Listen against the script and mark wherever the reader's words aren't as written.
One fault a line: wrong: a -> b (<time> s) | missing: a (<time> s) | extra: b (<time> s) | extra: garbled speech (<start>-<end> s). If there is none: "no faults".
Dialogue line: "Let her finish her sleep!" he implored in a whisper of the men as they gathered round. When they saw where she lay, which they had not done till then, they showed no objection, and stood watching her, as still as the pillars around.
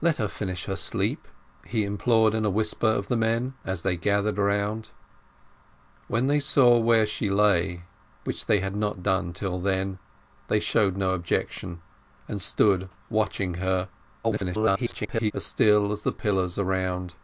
extra: garbled speech (14.2-15.3 s)